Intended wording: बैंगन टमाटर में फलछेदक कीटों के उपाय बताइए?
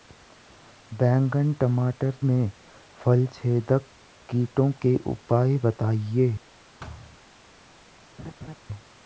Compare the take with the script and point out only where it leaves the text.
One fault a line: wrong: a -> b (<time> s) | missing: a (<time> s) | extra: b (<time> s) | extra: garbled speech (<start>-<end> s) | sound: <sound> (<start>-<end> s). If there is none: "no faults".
sound: thud (6.8-7.2 s)
sound: laugh (8.2-8.6 s)